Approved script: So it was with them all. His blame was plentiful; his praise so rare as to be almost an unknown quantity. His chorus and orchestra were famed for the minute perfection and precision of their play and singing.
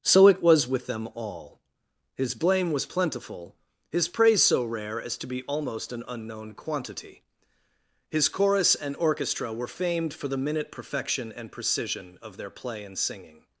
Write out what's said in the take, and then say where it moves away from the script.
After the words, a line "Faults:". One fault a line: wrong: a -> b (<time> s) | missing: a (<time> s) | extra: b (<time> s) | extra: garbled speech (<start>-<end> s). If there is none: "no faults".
So it was with them all. His blame was plentiful; his praise so rare as to be almost an unknown quantity. His chorus and orchestra were famed for the minute perfection and precision of their play and singing.
Faults:
no faults